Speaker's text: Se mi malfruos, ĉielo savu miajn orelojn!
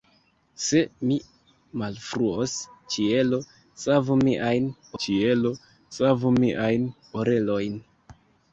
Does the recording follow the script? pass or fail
fail